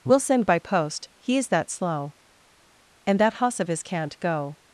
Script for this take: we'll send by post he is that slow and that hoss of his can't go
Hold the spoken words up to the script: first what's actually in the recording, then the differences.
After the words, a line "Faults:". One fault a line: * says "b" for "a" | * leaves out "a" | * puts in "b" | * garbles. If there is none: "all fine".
we'll send by post he is that slow and that hoss of his can't go
Faults:
all fine